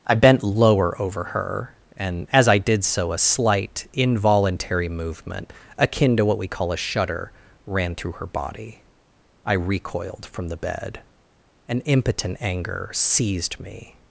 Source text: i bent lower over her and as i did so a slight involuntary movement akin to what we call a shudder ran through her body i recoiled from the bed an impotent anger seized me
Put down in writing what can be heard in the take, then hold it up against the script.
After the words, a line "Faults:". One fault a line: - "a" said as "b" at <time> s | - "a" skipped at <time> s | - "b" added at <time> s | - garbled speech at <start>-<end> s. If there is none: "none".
i bent lower over her and as i did so a slight involuntary movement akin to what we call a shudder ran through her body i recoiled from the bed an impotent anger seized me
Faults:
none